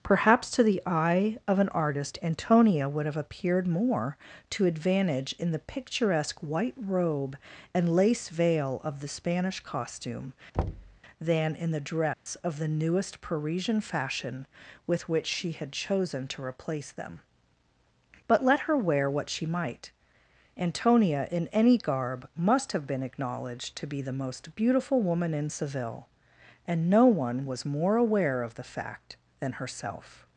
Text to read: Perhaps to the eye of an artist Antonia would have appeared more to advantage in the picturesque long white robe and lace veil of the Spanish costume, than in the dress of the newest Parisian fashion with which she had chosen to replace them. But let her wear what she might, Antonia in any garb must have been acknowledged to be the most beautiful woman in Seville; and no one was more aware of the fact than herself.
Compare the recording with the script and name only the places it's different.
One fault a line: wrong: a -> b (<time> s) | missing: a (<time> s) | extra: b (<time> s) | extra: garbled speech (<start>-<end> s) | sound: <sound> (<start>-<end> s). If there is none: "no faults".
missing: long (6.4 s)
sound: thud (10.5-11.0 s)
sound: dropout (12.1-12.3 s)